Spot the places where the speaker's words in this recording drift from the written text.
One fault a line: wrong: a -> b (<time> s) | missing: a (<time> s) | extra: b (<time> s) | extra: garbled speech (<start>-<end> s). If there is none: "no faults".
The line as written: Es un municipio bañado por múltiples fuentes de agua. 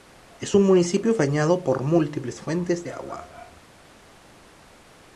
no faults